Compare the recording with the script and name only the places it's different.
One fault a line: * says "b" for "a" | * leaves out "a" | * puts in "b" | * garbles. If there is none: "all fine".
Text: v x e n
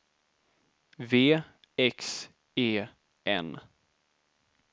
all fine